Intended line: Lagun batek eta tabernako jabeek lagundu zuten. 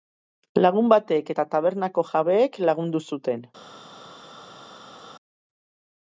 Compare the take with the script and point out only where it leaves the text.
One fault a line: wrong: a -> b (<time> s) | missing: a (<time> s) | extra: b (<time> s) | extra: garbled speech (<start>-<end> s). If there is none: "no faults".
no faults